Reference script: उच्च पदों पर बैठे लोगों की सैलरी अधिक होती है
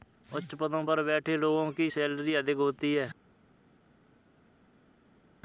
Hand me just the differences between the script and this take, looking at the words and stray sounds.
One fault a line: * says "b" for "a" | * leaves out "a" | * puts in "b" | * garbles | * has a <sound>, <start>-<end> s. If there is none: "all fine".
all fine